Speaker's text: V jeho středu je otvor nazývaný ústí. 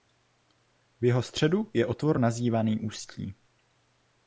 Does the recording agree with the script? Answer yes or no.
yes